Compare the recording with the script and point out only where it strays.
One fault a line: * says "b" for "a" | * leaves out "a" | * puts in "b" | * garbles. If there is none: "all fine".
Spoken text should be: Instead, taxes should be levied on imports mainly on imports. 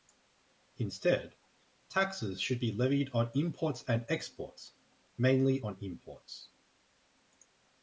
* puts in "and exports"